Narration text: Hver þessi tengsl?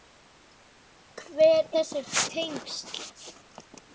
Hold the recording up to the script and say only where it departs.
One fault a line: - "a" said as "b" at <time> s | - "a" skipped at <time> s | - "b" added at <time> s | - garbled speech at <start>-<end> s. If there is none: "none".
none